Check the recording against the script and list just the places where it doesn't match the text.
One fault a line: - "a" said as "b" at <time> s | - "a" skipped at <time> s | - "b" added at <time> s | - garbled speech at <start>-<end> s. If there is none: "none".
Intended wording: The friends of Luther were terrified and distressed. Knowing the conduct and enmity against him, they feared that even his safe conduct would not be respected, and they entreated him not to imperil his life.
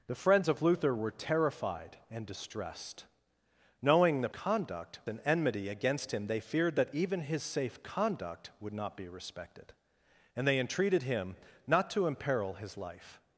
none